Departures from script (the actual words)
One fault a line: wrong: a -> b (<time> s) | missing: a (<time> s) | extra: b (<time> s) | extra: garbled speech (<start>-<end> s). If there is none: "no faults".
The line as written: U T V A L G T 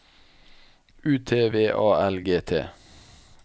no faults